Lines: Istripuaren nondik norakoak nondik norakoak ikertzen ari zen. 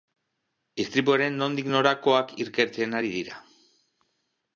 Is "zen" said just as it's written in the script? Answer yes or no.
no